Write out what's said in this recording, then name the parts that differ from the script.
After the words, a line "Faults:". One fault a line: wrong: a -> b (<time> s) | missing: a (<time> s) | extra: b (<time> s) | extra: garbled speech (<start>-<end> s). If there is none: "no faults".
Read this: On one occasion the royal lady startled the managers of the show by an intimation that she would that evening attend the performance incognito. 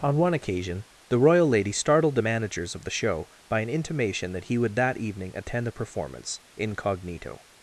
On one occasion the royal lady startled the managers of the show by an intimation that he would that evening attend the performance incognito.
Faults:
wrong: she -> he (4.4 s)